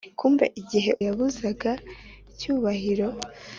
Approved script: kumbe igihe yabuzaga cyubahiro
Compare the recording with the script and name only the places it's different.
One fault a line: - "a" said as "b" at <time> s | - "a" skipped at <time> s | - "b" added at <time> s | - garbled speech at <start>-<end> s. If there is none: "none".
none